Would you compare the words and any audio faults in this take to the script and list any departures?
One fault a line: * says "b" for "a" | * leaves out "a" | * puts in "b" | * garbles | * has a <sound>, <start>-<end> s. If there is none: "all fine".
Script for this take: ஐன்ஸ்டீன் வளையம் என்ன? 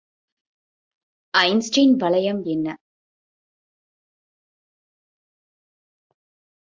all fine